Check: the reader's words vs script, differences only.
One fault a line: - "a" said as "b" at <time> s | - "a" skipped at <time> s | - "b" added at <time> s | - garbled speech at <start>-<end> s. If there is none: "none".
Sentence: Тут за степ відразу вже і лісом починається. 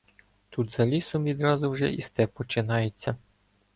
- "степ" said as "лісом" at 0.8 s
- "лісом" said as "степ" at 2.0 s